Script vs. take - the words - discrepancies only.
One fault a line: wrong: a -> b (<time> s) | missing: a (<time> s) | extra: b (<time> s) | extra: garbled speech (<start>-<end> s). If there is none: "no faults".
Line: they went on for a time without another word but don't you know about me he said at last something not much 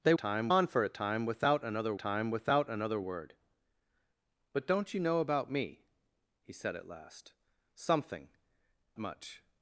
wrong: went -> time (0.1 s)
extra: time without another (1.9 s)
missing: not (8.3 s)